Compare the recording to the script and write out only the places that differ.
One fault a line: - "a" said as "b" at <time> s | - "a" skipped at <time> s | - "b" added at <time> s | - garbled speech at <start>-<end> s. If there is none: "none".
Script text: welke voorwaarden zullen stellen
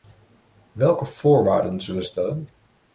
none